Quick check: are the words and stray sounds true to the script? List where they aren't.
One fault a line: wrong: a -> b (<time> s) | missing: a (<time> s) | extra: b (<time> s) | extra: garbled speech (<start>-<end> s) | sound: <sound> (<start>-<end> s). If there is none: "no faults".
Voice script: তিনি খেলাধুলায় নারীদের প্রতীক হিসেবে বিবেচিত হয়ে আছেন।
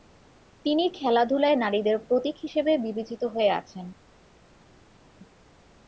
no faults